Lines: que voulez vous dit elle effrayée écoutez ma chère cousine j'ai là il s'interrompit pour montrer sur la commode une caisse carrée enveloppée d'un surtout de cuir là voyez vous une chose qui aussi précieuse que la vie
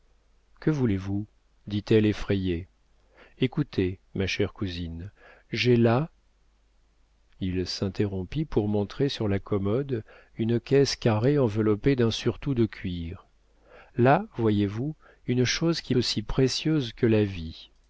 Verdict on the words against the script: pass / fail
pass